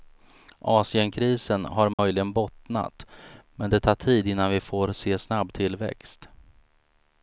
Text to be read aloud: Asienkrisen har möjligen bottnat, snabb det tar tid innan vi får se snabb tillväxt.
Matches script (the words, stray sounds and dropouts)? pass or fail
fail